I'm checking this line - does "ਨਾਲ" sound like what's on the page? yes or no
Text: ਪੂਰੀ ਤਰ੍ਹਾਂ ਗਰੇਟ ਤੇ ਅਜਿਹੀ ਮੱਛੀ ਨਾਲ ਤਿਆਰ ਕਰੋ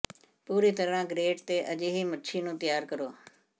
no